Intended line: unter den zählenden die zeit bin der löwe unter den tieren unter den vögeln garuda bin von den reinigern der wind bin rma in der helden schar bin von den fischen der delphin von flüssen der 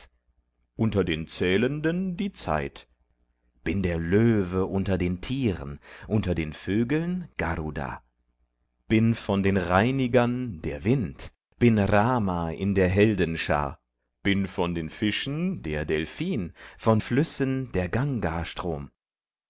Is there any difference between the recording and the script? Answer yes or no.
no